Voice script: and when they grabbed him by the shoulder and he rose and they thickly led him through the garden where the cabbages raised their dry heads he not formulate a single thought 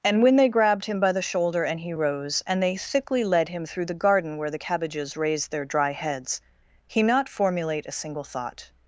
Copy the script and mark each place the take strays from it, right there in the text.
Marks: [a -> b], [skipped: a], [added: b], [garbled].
and when they grabbed him by the shoulder and he rose and they thickly led him through the garden where the cabbages raised their dry heads he not formulate a single thought